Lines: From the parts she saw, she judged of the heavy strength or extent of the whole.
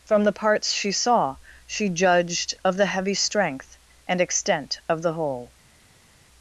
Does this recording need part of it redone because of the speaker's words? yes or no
yes